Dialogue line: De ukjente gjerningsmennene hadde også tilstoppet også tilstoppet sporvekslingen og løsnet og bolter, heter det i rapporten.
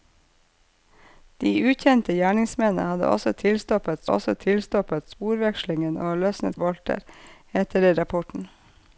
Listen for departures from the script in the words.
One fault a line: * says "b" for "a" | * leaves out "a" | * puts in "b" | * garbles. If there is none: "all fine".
all fine